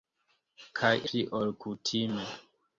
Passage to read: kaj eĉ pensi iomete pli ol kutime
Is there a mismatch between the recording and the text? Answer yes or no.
yes